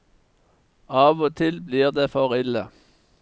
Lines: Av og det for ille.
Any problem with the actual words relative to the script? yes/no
yes